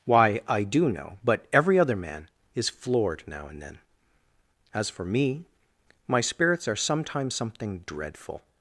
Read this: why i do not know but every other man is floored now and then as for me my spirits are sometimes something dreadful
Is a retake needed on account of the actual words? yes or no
yes